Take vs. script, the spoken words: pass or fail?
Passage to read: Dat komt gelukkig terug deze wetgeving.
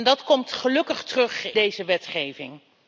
pass